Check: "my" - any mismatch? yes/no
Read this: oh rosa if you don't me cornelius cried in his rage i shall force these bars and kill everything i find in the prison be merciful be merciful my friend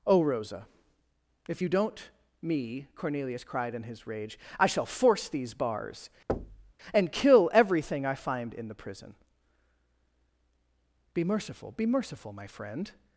no